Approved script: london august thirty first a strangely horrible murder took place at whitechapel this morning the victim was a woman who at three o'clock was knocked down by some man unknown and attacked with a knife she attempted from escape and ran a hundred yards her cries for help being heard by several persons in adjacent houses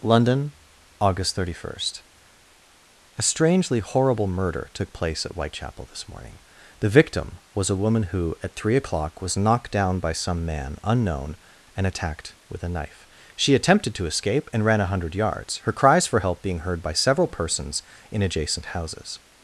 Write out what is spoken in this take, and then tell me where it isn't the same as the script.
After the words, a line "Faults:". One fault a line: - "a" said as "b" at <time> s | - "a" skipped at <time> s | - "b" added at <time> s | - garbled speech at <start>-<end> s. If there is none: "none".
london august thirty first a strangely horrible murder took place at whitechapel this morning the victim was a woman who at three o'clock was knocked down by some man unknown and attacked with a knife she attempted to escape and ran a hundred yards her cries for help being heard by several persons in adjacent houses
Faults:
- "from" said as "to" at 13.9 s